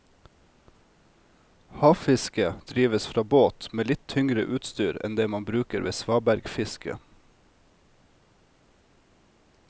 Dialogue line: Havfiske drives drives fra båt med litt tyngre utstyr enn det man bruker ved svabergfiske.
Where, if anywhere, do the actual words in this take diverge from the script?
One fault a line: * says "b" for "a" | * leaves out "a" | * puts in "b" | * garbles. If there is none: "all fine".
* leaves out "drives"